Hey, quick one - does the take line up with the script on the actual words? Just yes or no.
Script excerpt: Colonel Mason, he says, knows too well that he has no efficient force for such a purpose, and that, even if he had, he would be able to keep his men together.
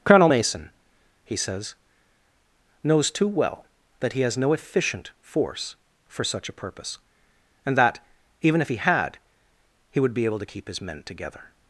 yes